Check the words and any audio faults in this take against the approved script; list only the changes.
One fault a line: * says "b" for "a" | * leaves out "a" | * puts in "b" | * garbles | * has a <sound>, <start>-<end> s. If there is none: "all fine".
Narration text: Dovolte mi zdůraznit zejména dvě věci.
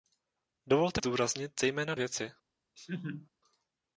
* leaves out "mi"
* leaves out "dvě"
* has a laugh, 2.8-3.3 s